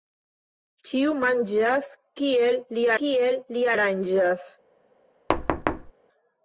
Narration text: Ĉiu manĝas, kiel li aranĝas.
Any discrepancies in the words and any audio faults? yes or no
yes